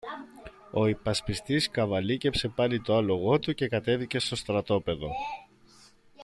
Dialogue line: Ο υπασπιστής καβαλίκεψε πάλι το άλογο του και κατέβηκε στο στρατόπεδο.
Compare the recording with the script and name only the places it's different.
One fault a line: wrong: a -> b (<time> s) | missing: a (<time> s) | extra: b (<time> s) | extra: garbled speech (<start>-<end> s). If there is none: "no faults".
no faults